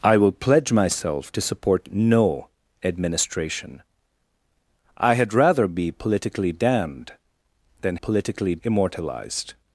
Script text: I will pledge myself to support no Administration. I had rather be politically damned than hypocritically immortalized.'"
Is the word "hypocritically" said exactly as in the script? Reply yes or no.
no